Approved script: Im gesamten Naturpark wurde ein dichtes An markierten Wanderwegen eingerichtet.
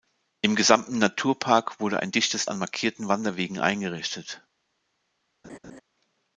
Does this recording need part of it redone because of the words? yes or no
no